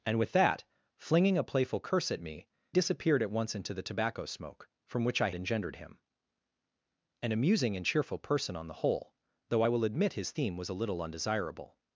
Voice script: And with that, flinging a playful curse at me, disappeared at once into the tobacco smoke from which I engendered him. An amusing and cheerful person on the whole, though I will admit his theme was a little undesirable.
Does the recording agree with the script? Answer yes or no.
yes